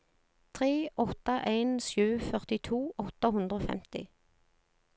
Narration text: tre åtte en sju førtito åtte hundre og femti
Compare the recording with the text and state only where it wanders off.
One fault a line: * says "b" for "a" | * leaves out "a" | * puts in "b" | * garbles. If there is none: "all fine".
all fine